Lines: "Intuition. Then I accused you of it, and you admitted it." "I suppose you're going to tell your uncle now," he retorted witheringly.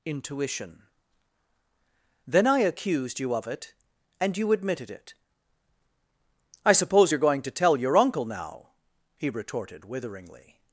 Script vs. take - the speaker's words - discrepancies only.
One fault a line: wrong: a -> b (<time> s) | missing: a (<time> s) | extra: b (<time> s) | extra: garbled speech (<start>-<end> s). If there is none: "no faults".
no faults